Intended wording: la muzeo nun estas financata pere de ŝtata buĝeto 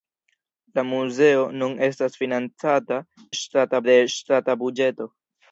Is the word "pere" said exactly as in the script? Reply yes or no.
no